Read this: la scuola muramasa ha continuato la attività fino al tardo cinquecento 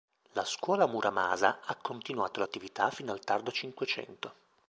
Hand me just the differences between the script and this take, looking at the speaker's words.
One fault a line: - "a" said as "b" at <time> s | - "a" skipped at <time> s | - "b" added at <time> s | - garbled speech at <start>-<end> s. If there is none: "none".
none